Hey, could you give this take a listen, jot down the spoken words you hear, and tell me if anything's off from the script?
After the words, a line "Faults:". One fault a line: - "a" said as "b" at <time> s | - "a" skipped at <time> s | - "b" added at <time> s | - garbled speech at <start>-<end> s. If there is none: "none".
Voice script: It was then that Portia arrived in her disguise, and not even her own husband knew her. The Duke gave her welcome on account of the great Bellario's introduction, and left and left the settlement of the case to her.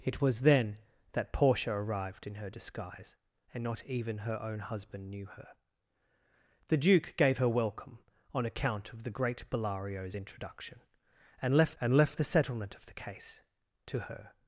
It was then that Portia arrived in her disguise, and not even her own husband knew her. The Duke gave her welcome on account of the great Bellario's introduction, and left and left the settlement of the case to her.
Faults:
none